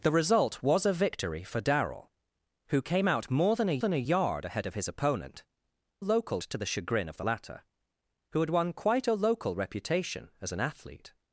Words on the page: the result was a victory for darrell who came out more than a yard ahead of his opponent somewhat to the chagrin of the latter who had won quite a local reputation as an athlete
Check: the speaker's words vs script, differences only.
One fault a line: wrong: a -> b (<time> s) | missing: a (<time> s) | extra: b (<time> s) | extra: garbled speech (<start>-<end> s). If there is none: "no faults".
extra: than a (3.8 s)
wrong: somewhat -> local (6.0 s)